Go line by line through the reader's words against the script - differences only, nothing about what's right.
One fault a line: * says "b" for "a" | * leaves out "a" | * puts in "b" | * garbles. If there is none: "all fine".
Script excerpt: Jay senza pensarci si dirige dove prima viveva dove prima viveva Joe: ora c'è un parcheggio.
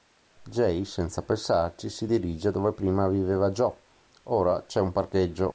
* leaves out "dove prima viveva"